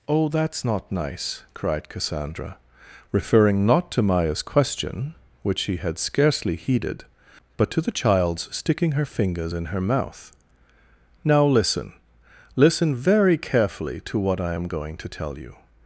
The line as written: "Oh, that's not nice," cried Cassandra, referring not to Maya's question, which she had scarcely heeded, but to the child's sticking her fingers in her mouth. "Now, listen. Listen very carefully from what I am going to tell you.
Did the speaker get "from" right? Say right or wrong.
wrong